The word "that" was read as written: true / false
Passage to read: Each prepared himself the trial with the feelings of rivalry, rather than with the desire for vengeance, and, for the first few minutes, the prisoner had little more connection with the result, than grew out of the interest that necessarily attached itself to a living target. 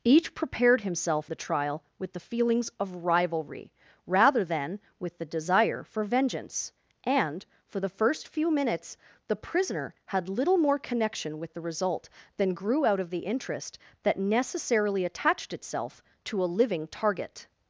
true